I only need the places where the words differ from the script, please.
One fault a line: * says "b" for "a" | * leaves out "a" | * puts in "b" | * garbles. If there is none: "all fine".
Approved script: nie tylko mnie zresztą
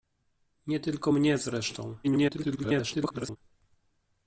* garbles